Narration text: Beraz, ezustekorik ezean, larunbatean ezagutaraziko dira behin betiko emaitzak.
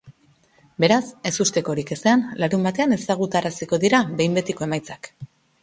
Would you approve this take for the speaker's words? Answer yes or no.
yes